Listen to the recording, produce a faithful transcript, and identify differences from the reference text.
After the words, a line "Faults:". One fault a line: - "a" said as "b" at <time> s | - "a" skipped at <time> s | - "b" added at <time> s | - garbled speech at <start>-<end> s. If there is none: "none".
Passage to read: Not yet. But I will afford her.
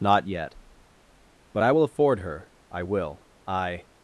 Not yet. But I will afford her. I will. I
Faults:
- "I will I" added at 2.7 s